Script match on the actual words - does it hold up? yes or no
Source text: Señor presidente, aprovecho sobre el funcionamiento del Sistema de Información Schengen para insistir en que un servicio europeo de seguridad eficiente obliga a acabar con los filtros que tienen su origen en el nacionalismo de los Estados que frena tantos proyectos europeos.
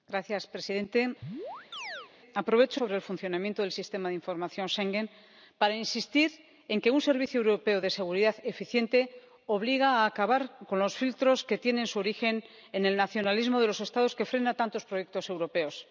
yes